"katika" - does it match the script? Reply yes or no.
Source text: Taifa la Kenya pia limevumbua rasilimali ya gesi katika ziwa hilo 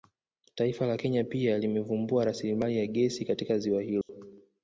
yes